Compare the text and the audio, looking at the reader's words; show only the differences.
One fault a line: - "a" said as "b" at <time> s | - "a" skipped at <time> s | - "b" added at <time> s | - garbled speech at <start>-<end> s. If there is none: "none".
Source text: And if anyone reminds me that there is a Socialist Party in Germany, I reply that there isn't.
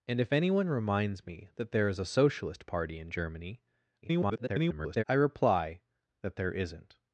- garbled speech at 4.0-5.0 s